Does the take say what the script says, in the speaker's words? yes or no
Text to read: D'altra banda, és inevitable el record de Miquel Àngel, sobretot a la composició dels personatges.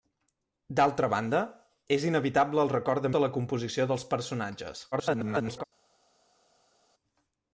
no